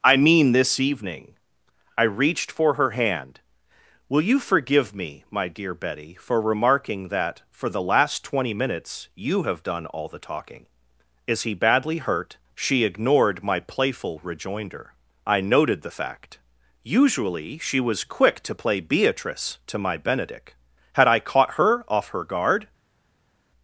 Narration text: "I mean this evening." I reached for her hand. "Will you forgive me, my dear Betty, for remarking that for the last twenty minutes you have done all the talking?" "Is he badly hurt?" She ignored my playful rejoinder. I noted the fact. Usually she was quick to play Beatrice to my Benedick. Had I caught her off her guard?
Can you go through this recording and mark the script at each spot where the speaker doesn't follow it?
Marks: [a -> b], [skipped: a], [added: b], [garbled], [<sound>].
"I mean this evening." I reached for her hand. "Will you forgive me, my dear Betty, for remarking that for the last twenty minutes you have done all the talking?" "Is he badly hurt?" She ignored my playful rejoinder. I noted the fact. Usually she was quick to play Beatrice to my Benedick. Had I caught her off her guard?